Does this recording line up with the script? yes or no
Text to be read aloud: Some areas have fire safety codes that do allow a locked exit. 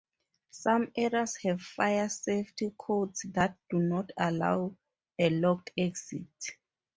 no